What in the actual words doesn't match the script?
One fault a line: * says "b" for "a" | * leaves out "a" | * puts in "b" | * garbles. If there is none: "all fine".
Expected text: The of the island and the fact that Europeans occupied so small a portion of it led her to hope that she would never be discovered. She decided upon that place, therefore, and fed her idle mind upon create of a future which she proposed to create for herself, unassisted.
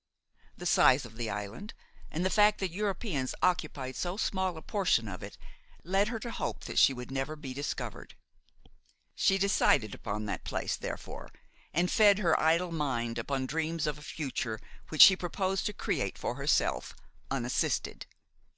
* puts in "size"
* says "dreams" for "create"